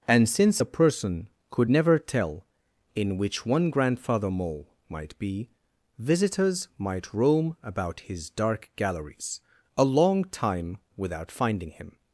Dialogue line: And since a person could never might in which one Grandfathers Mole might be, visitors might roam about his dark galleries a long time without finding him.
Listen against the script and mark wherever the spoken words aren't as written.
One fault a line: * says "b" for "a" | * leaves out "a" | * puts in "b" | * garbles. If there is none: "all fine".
* says "tell" for "might"
* says "Grandfather" for "Grandfathers"